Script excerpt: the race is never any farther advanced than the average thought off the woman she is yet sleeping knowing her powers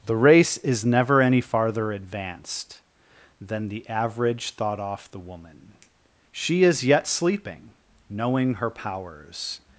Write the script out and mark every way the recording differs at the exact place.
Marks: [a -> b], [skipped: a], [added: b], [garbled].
the race is never any farther advanced than the average thought off the woman she is yet sleeping knowing her powers